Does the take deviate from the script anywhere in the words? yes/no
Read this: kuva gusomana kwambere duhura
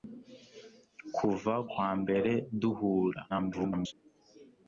yes